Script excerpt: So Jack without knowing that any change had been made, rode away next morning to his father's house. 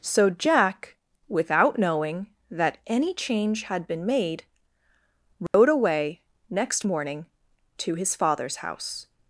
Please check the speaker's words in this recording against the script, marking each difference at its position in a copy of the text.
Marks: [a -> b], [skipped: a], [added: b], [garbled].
So Jack without knowing that any change had been made, rode away next morning to his father's house.